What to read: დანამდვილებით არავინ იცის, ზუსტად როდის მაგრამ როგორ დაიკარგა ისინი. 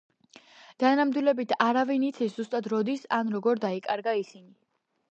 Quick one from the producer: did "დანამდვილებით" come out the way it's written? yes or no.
yes